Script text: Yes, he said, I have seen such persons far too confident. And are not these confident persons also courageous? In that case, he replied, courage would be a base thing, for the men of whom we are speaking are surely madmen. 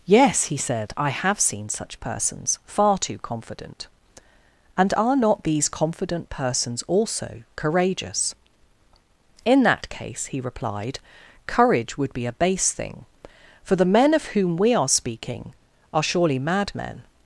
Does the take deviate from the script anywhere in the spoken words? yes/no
no